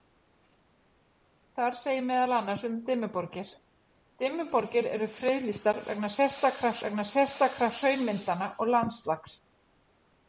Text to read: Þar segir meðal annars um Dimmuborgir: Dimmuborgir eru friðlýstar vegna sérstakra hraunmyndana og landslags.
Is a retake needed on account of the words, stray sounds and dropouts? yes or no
yes